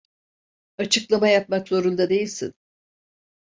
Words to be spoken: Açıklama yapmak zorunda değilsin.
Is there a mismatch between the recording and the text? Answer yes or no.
no